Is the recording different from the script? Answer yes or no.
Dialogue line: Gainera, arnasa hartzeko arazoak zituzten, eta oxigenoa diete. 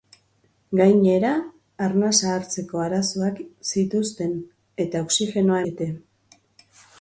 no